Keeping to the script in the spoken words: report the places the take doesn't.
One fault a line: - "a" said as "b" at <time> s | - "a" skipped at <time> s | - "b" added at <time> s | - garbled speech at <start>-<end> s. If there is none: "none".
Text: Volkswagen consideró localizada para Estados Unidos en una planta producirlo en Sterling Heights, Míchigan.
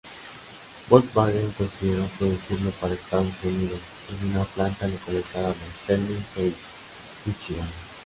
- "localizada" said as "producirlo" at 2.2 s
- "producirlo" said as "localizada" at 4.9 s